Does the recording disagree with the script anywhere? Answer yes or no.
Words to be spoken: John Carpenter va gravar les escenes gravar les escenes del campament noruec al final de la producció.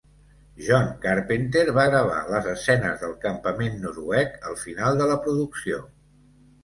yes